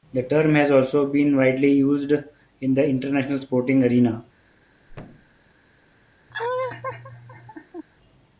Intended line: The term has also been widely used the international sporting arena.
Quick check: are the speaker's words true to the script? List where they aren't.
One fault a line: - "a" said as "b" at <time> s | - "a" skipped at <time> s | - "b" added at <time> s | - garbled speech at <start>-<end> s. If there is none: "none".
- "in" added at 2.6 s